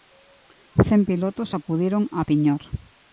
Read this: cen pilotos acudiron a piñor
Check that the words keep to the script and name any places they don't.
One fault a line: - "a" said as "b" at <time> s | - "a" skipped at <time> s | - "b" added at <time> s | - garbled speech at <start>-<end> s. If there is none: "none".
none